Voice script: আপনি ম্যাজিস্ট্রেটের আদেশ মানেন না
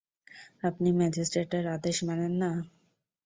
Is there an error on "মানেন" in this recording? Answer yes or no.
no